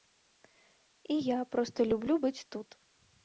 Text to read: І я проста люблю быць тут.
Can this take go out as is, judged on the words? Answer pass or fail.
pass